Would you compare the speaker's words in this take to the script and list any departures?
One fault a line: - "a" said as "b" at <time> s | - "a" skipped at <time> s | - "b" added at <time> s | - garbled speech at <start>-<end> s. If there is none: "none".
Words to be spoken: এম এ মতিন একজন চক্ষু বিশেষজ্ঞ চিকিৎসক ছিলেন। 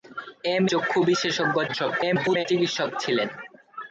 - "এ মতিন একজন" skipped at 0.7 s
- garbled speech at 1.7-2.5 s